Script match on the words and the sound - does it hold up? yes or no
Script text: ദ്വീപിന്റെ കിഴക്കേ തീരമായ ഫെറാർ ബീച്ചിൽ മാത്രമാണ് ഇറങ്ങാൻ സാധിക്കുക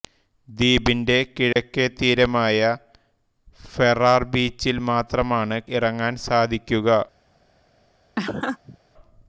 no